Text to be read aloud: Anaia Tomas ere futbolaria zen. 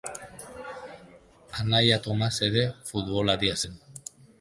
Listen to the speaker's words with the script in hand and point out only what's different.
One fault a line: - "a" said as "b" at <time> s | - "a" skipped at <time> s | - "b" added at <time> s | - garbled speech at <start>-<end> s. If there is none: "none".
none